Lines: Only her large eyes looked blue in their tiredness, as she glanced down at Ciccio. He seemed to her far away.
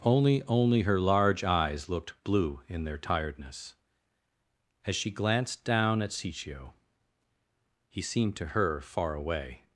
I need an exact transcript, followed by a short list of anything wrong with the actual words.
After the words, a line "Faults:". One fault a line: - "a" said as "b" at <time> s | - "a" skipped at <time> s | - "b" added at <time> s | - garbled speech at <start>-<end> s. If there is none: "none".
Only only her large eyes looked blue in their tiredness, as she glanced down at Ciccio. He seemed to her far away.
Faults:
- "only" added at 0.4 s